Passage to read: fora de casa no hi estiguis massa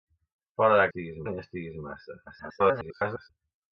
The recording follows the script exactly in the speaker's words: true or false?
false